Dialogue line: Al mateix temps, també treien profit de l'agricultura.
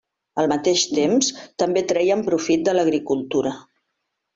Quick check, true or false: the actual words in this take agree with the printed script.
true